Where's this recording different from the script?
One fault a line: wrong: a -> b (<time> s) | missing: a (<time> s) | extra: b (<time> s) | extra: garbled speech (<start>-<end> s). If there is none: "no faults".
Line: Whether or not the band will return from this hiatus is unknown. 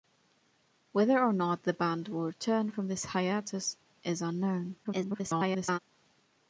extra: garbled speech (4.8-5.8 s)